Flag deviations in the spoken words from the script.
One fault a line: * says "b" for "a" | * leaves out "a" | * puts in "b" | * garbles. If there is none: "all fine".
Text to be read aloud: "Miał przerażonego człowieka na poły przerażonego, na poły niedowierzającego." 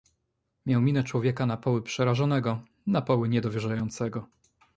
* says "minę" for "przerażonego"